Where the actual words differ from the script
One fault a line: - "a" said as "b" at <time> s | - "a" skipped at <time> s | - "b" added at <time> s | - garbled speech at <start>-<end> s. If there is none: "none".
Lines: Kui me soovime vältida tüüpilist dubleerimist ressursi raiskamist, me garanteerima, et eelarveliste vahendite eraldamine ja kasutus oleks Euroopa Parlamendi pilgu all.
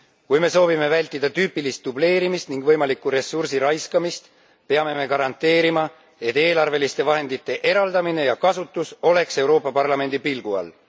- "ning võimalikku" added at 2.5 s
- "peame" added at 4.7 s